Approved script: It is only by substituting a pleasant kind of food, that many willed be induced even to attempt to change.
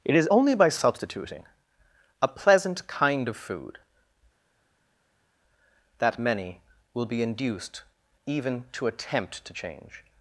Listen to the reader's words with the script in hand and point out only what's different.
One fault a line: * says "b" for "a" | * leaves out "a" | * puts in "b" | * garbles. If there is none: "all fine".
* says "will" for "willed"